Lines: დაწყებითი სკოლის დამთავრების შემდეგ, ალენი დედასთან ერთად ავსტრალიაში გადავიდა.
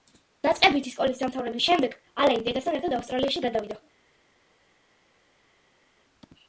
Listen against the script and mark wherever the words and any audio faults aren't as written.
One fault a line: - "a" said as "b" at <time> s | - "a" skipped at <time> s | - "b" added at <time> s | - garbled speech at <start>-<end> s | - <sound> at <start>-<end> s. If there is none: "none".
none